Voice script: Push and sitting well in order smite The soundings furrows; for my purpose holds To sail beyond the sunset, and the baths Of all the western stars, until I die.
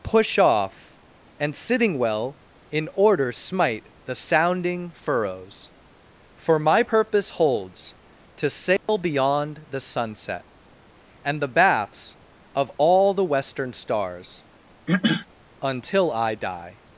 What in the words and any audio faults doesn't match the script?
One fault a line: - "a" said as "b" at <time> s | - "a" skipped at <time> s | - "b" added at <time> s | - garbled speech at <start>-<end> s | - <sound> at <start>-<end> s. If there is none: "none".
- "off" added at 0.4 s
- "soundings" said as "sounding" at 4.2 s
- dropout at 8.8-8.9 s
- throat clearing at 14.9-15.3 s